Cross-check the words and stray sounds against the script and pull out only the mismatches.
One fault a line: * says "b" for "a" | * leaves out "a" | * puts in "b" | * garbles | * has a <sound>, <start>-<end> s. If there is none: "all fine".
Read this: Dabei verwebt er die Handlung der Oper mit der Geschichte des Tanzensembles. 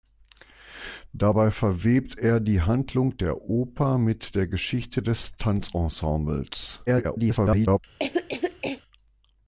* garbles
* has a cough, 8.0-8.8 s